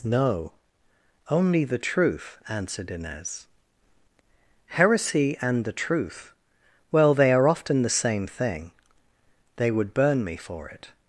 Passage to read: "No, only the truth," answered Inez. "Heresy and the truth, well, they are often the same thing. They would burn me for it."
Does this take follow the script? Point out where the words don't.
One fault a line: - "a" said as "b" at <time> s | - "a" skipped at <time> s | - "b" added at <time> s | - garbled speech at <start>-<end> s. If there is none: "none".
none